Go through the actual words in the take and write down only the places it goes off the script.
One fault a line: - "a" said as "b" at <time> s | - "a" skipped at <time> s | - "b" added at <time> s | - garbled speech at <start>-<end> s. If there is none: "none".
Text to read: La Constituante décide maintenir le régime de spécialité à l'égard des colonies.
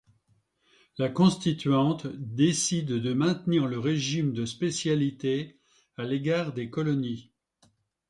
- "de" added at 2.9 s